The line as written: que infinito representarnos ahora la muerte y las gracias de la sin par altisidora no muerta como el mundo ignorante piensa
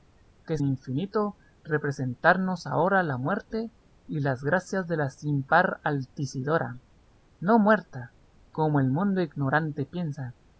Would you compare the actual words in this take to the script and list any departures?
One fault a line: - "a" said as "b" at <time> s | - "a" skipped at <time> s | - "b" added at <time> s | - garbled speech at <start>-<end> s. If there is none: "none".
none